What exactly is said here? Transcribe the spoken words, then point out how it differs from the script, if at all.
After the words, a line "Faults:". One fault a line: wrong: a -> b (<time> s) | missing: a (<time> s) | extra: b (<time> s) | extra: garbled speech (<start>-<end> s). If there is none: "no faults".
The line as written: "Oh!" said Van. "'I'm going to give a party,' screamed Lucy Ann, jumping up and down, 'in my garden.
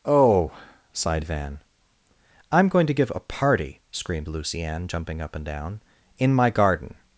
"Oh!" sighed Van. "'I'm going to give a party,' screamed Lucy Ann, jumping up and down, 'in my garden.
Faults:
wrong: said -> sighed (0.9 s)